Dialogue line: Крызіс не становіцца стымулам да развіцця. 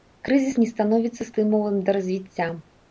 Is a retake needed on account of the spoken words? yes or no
no